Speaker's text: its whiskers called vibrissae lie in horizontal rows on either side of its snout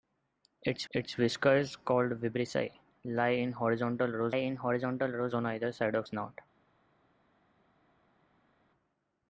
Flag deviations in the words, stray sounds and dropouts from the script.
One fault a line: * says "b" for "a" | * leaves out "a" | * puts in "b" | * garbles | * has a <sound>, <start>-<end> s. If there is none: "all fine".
* puts in "its"
* puts in "in horizontal rows"
* leaves out "its"